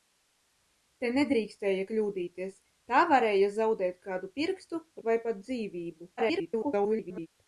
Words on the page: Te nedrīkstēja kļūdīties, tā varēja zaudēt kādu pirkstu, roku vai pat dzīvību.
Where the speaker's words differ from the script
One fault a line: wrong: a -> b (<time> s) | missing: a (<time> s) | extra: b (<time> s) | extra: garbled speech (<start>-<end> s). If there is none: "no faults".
missing: roku (4.8 s)
extra: garbled speech (6.2-7.3 s)